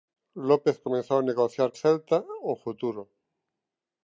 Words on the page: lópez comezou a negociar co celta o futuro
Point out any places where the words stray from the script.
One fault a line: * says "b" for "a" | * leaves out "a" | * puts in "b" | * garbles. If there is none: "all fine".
* leaves out "co"